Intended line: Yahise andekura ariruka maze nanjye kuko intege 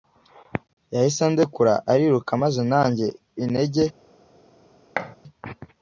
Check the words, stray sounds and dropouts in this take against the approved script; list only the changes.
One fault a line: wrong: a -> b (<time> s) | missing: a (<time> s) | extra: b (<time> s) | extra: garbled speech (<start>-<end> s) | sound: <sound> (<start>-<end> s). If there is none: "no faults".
missing: kuko (3.1 s)
sound: thud (5.0-5.2 s)